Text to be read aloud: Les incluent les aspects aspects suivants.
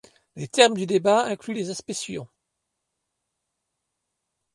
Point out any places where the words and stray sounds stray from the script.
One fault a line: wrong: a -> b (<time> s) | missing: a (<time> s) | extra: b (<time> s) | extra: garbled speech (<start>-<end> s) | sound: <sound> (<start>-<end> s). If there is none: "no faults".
extra: termes du débat (0.5 s)
missing: aspects (1.9 s)